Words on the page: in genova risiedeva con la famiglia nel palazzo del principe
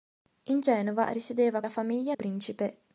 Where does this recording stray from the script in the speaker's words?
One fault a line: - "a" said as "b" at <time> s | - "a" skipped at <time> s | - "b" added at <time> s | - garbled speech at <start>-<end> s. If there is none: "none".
- "con" skipped at 1.6 s
- "nel palazzo del" skipped at 2.1 s